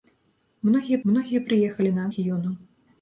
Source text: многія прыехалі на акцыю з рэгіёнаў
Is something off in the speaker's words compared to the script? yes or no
yes